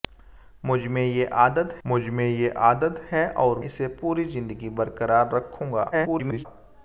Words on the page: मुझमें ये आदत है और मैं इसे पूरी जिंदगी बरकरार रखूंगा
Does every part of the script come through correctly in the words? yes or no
no